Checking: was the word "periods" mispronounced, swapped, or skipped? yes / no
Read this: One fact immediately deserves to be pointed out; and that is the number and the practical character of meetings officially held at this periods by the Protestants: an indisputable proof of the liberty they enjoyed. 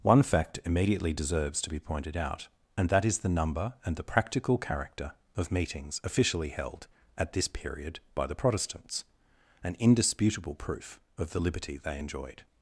yes